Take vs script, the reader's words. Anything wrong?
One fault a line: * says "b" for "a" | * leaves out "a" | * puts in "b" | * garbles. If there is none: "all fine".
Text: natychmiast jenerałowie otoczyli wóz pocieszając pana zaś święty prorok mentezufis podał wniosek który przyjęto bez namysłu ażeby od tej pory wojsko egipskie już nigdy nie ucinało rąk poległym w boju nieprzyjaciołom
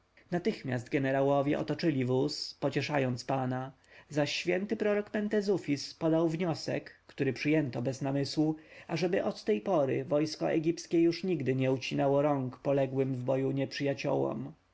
all fine